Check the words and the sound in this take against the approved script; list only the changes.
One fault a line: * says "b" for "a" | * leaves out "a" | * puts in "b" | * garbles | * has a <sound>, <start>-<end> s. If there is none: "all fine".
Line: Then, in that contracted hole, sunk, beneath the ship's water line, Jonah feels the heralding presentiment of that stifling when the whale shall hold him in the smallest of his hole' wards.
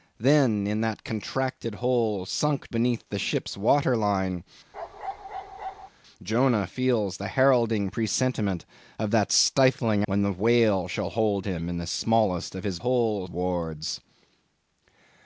* has a bark, 4.7-5.9 s